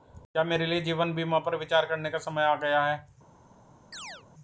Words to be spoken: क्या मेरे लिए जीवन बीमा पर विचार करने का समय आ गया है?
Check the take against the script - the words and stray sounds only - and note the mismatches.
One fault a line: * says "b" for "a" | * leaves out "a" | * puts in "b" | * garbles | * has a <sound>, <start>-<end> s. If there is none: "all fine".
* has a chirp, 3.9-4.2 s